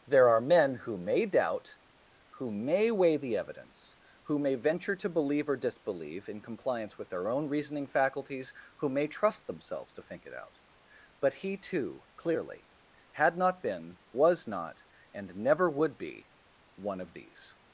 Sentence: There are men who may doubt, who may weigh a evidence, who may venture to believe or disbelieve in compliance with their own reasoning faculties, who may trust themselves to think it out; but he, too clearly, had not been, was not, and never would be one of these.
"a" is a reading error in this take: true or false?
true